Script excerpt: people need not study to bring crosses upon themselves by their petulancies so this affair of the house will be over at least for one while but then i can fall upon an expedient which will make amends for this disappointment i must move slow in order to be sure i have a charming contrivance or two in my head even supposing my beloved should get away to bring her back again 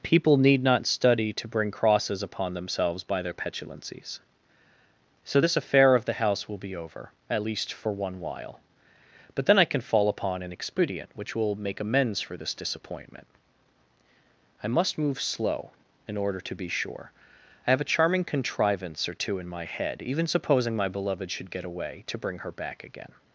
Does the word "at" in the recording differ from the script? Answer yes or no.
no